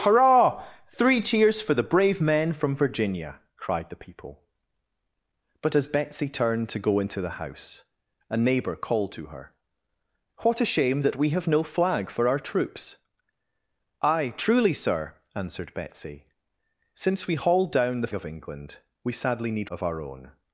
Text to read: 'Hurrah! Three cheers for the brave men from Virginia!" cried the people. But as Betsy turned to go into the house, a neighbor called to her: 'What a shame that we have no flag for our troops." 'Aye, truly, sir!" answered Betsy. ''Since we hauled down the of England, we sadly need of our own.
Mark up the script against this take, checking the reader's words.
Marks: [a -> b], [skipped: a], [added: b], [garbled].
'Hurrah! Three cheers for the brave men from Virginia!" cried the people. But as Betsy turned to go into the house, a neighbor called to her: 'What a shame that we have no flag for our troops." 'Aye, truly, sir!" answered Betsy. ''Since we hauled down the of England, we sadly need of our own.